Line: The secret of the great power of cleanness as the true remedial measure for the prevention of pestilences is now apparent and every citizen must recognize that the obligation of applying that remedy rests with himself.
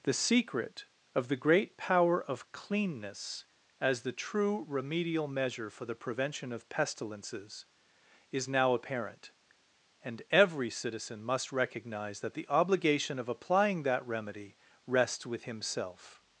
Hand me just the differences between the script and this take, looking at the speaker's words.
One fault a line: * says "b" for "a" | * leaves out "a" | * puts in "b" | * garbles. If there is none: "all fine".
all fine